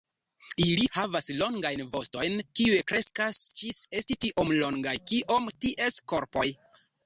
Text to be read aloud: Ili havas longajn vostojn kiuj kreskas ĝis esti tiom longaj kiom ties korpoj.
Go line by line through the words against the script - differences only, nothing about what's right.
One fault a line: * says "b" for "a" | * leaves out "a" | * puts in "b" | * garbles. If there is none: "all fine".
all fine